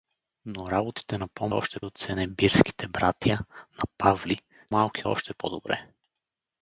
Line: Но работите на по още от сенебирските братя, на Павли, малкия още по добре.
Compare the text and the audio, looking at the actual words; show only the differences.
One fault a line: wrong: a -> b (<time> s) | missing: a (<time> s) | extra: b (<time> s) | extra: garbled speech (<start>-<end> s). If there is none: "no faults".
no faults